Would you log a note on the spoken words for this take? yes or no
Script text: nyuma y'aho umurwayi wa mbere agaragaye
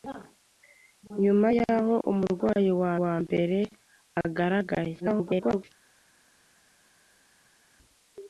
yes